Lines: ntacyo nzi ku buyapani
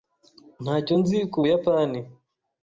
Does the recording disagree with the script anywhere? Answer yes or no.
no